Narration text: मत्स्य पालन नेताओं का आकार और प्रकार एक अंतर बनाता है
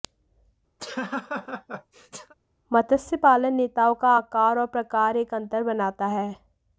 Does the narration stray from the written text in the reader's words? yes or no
no